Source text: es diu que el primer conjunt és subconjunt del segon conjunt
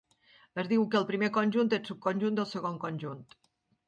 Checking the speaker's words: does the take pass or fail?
pass